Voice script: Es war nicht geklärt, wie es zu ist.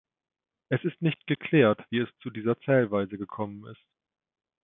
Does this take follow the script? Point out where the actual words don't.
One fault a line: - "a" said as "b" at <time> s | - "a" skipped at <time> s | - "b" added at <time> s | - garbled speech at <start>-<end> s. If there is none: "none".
- "war" said as "ist" at 0.8 s
- "dieser Zählweise gekommen" added at 2.3 s